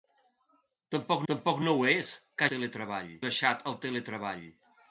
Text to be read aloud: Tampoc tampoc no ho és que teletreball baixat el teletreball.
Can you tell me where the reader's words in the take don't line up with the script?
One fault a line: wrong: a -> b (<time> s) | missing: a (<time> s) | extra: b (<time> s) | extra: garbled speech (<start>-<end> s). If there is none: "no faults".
no faults